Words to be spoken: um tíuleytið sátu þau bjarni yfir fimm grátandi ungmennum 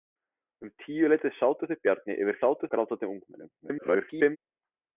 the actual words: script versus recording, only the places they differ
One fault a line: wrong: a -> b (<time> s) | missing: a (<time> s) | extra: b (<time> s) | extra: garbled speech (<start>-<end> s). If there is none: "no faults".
wrong: fimm -> sátu (2.4 s)
extra: garbled speech (3.6-4.4 s)